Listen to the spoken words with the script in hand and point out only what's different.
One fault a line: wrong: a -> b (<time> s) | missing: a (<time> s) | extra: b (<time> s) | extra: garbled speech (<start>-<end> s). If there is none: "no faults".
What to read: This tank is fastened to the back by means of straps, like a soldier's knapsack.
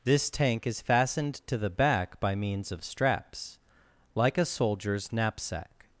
no faults